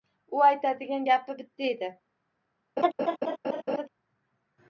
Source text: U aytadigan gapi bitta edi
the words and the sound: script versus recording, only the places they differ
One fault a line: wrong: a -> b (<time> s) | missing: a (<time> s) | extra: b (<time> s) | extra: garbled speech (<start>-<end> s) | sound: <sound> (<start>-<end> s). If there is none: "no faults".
sound: laugh (2.8-3.9 s)